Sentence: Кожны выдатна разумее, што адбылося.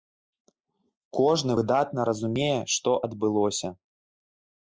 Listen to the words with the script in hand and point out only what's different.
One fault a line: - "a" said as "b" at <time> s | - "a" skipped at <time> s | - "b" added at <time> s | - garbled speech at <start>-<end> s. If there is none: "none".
none